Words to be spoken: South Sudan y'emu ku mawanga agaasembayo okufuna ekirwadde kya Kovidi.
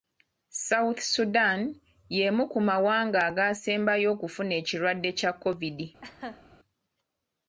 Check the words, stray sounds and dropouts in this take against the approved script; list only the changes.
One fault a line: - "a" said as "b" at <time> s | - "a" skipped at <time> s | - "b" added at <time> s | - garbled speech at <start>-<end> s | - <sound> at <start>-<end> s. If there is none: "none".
- laugh at 6.0-6.4 s